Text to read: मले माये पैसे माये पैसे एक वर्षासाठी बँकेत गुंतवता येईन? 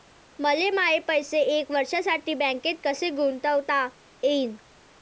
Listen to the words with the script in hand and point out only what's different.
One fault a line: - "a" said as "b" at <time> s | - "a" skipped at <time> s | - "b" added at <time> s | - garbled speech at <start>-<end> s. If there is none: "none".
- "माये पैसे" skipped at 1.4 s
- "कसे" added at 2.8 s